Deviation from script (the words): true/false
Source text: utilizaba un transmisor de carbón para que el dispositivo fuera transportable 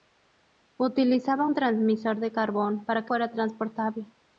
true